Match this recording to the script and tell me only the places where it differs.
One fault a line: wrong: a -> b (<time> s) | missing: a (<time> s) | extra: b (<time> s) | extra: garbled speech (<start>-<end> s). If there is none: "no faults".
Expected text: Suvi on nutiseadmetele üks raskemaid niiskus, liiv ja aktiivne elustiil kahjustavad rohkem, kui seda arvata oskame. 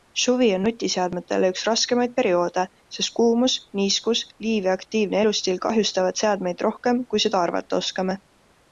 extra: perioode sest kuumus (2.2 s)
extra: seadmeid (6.2 s)